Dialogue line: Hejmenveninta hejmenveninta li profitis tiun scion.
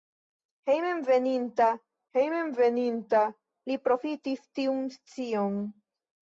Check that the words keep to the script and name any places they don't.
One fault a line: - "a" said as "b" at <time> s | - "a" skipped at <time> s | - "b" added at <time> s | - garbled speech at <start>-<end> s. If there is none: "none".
none